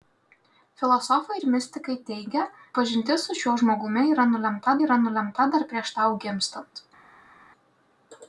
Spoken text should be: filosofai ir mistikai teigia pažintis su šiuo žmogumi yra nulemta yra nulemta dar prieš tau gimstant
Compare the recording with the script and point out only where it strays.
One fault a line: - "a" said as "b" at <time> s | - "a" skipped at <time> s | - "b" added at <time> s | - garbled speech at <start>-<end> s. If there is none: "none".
none